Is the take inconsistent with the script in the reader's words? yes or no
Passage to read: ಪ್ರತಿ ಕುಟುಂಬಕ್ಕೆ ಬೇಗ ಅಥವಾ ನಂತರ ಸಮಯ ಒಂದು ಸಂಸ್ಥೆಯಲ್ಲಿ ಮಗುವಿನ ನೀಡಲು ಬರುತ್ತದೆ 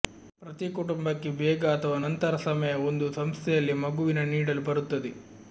no